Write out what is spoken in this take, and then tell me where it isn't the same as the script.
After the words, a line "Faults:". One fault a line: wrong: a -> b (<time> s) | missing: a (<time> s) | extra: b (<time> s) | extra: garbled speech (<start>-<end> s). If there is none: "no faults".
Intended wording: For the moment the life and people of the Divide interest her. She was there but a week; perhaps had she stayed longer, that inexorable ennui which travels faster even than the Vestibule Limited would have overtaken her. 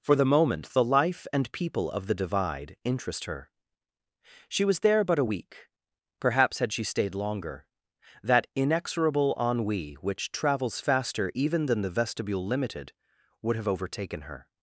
For the moment the life and people of the Divide interest her. She was there but a week; perhaps had she stayed longer, that inexorable ennui which travels faster even than the Vestibule Limited would have overtaken her.
Faults:
no faults